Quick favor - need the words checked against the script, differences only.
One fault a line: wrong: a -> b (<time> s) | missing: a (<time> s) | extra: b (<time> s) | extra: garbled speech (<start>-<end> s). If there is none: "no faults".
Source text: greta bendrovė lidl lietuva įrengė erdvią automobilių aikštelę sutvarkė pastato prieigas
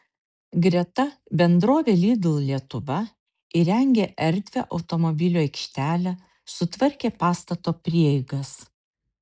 no faults